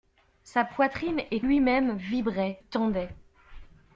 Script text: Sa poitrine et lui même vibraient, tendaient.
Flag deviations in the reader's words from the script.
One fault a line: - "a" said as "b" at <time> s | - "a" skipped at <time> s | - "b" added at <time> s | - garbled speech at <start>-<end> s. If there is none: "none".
none